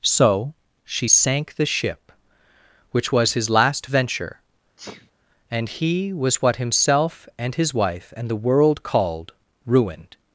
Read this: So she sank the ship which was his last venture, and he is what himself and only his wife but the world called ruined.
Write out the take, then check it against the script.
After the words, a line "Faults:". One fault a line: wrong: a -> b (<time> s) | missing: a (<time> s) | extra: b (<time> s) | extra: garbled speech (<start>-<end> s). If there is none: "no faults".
So she sank the ship which was his last venture, and he was what himself and his wife and the world called ruined.
Faults:
wrong: is -> was (6.1 s)
missing: only (7.5 s)
wrong: but -> and (8.2 s)